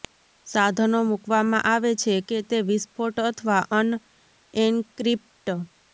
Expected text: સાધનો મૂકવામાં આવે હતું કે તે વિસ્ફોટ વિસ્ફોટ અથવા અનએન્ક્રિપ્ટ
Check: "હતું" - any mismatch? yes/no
yes